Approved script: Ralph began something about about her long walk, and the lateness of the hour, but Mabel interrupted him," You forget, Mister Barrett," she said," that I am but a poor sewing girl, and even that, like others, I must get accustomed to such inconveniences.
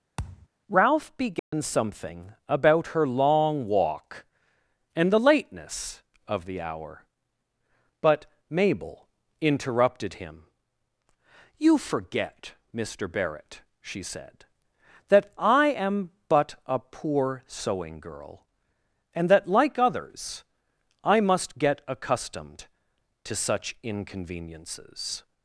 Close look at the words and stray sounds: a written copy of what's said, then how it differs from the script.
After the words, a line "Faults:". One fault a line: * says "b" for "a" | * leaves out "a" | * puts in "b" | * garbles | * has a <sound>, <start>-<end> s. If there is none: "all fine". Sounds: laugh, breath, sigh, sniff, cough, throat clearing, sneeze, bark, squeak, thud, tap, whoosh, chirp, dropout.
Ralph began something about her long walk, and the lateness of the hour, but Mabel interrupted him," You forget, Mister Barrett," she said," that I am but a poor sewing girl, and that, like others, I must get accustomed to such inconveniences.
Faults:
* has a thud, 0.2-0.5 s
* has a dropout, 1.4-1.5 s
* leaves out "about"
* leaves out "even"